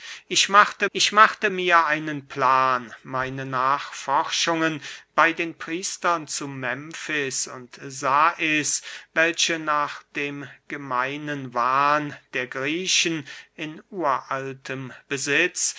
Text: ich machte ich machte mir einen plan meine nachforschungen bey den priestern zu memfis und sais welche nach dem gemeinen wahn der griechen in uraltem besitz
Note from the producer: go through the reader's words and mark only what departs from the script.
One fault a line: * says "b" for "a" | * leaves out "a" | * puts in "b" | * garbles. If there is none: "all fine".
all fine